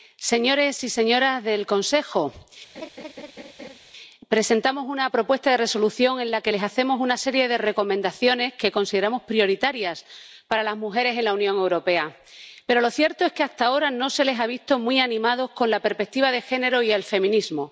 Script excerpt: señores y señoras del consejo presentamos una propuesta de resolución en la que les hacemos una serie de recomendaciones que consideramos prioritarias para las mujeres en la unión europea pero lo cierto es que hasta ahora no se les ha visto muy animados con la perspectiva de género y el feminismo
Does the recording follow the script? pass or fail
pass